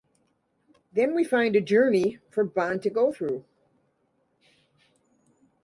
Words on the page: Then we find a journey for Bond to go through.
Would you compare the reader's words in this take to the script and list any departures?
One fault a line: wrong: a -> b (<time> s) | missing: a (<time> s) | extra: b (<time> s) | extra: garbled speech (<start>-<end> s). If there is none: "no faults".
no faults